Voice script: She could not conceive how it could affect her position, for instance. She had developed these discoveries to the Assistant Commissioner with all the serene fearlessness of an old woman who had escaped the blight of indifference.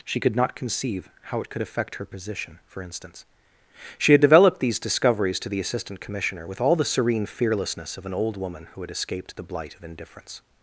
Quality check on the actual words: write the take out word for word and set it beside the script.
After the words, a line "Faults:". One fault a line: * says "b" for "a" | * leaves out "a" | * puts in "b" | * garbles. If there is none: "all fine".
She could not conceive how it could affect her position, for instance. She had developed these discoveries to the Assistant Commissioner with all the serene fearlessness of an old woman who had escaped the blight of indifference.
Faults:
all fine